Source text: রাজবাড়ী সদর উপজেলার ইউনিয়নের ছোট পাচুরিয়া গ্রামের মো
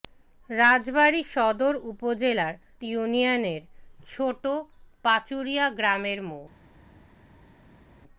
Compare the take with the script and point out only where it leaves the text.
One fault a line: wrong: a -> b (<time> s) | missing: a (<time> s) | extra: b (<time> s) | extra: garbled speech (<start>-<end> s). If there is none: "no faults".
no faults